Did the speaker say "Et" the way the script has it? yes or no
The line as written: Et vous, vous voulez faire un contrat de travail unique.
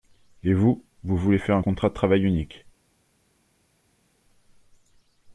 yes